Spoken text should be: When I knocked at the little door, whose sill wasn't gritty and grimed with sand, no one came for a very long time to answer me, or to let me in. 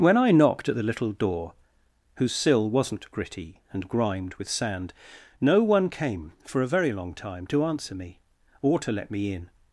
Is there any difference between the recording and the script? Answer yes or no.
no